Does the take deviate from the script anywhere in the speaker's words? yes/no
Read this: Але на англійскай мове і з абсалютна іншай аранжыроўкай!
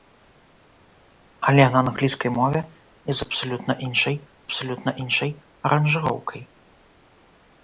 yes